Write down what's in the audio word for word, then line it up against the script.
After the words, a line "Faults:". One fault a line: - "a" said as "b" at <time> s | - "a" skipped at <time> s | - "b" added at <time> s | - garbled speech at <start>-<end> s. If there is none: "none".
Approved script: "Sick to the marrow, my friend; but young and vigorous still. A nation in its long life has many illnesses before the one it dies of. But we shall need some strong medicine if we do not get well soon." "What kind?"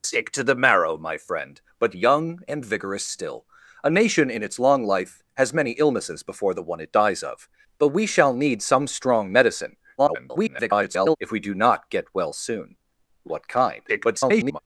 "Sick to the marrow, my friend; but young and vigorous still. A nation in its long life has many illnesses before the one it dies of. But we shall need some strong medicine [garbled] if we do not get well soon." "What kind?" [garbled]
Faults:
- garbled speech at 10.0-11.2 s
- garbled speech at 13.9-14.6 s